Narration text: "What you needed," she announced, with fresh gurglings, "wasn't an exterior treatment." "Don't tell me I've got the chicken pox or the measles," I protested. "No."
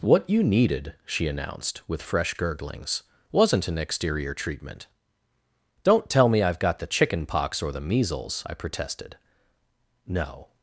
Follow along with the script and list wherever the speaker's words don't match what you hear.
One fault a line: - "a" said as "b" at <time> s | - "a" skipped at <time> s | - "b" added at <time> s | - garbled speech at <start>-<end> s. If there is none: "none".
none